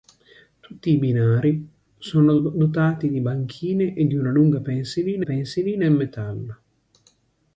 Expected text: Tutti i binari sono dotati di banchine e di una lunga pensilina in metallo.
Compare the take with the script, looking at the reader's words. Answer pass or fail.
fail